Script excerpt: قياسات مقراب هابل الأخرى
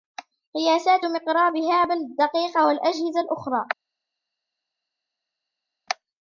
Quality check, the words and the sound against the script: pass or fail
fail